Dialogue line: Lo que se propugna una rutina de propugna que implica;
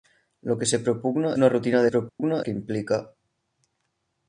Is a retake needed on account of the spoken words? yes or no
no